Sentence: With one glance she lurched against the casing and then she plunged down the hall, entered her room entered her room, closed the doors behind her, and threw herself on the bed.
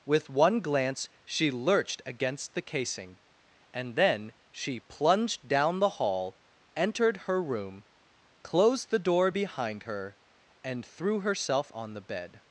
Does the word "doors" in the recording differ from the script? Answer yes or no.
yes